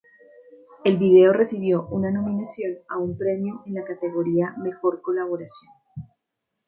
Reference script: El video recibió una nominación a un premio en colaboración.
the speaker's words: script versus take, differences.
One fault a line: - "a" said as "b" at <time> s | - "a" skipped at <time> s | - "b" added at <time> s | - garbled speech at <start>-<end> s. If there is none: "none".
- "la categoría Mejor" added at 3.7 s